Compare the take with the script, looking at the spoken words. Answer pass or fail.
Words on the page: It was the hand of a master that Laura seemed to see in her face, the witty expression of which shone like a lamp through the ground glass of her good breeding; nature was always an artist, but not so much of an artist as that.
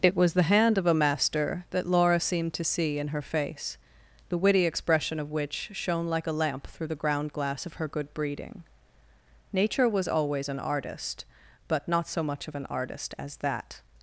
pass